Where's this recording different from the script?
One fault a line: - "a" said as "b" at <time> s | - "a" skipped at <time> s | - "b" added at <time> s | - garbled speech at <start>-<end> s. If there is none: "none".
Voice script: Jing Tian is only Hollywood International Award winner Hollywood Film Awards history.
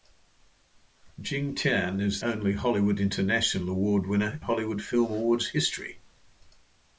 none